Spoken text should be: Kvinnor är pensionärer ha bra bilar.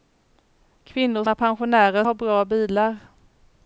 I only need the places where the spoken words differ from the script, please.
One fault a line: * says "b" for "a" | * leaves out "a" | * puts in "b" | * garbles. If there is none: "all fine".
all fine